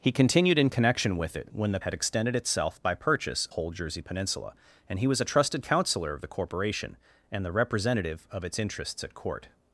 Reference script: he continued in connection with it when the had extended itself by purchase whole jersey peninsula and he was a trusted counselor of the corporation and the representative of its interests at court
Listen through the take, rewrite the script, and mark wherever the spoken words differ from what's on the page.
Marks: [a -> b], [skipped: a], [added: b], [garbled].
he continued in connection with it when the had extended itself by purchase whole jersey peninsula and he was a trusted counselor of the corporation and the representative of its interests at court